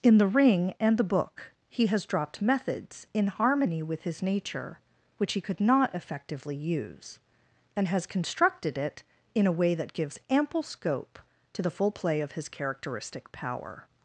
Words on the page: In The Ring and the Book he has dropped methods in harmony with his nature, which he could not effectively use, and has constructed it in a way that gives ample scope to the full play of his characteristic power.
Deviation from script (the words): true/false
false